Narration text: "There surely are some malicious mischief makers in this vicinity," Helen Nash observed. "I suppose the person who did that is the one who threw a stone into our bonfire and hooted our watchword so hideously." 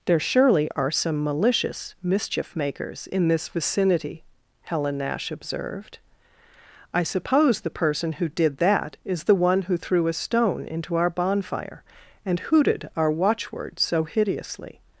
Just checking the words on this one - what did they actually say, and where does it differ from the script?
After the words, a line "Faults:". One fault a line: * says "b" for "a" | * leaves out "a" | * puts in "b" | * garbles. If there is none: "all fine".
"There surely are some malicious mischief makers in this vicinity," Helen Nash observed. "I suppose the person who did that is the one who threw a stone into our bonfire and hooted our watchword so hideously."
Faults:
all fine